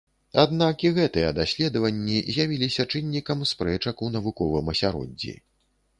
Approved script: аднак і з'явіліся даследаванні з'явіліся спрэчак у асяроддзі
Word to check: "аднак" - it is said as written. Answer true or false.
true